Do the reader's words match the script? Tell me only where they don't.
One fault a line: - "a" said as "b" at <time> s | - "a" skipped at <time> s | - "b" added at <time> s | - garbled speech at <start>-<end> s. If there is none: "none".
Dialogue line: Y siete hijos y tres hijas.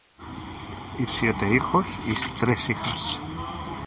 none